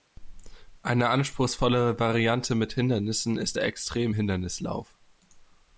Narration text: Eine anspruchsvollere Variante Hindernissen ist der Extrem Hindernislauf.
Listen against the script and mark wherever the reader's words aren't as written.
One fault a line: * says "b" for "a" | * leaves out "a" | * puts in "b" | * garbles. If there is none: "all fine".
* puts in "mit"